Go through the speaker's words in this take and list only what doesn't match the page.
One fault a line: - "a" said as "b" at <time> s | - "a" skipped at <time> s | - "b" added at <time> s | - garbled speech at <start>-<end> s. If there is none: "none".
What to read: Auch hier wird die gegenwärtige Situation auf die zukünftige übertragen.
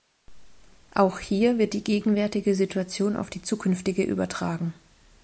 none